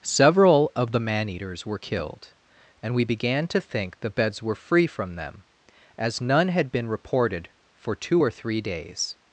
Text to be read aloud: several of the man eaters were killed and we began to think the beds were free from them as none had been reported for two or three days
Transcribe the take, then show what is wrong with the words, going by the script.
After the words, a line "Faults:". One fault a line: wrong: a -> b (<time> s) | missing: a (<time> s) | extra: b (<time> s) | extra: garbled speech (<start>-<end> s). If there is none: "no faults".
several of the man eaters were killed and we began to think the beds were free from them as none had been reported for two or three days
Faults:
no faults